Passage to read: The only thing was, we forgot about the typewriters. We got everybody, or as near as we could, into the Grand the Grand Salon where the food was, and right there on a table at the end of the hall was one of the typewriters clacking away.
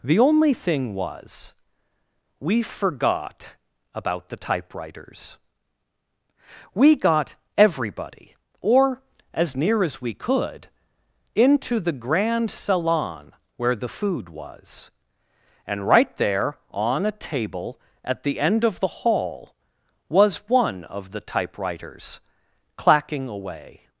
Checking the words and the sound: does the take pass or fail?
fail